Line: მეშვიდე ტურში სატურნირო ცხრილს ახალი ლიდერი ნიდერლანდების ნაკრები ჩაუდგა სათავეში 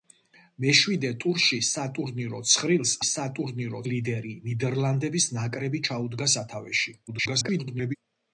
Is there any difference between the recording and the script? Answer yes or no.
yes